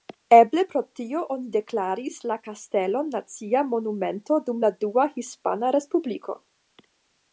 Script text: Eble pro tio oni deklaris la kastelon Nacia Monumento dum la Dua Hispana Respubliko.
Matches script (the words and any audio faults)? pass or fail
pass